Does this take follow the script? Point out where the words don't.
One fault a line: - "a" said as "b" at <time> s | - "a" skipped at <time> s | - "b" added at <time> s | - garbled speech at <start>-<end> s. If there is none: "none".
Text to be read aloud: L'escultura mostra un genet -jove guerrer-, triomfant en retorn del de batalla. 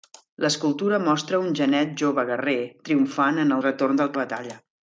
none